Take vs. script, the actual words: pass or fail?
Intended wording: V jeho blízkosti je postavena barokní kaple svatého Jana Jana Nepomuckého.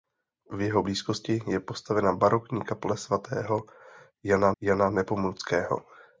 pass